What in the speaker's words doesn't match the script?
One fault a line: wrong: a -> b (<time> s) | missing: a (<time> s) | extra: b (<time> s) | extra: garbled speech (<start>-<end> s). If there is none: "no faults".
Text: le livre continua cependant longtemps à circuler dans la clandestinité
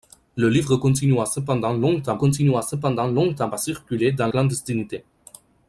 extra: continua cependant longtemps (2.2 s)
missing: la (4.3 s)